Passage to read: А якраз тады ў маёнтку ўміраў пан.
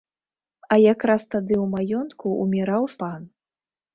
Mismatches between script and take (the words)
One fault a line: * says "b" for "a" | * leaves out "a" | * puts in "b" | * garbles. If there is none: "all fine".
all fine